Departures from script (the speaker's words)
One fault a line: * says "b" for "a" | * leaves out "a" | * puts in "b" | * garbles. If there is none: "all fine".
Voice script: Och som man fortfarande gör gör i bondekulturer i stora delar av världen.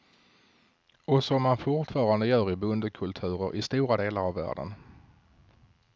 * leaves out "gör"